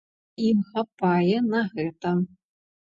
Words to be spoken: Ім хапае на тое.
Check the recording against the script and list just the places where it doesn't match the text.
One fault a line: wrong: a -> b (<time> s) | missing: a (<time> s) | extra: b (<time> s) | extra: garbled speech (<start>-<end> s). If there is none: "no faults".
wrong: тое -> гэта (1.8 s)